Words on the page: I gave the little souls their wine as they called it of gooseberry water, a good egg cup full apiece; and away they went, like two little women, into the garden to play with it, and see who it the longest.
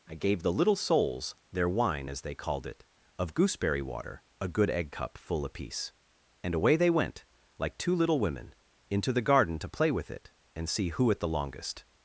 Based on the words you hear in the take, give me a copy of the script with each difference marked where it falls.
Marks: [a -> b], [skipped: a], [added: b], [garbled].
I gave the little souls their wine as they called it of gooseberry water, a good egg cup full apiece; and away they went, like two little women, into the garden to play with it, and see who it the longest.